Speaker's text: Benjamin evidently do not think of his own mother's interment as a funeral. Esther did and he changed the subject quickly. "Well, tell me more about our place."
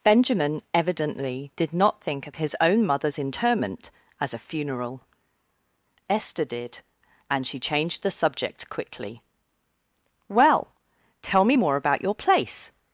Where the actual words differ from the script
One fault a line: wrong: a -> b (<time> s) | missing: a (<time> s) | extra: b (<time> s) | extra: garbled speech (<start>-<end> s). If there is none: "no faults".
wrong: do -> did (1.6 s)
wrong: he -> she (7.5 s)
wrong: our -> your (12.0 s)